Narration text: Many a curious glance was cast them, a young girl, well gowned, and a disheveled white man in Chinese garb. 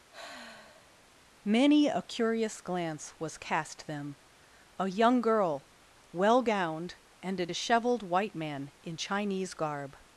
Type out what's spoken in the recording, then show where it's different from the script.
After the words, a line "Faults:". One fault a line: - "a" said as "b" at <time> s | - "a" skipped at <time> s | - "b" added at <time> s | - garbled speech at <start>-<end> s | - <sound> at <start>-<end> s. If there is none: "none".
Many a curious glance was cast them, a young girl, well gowned, and a disheveled white man in Chinese garb.
Faults:
- sigh at 0.1-1.1 s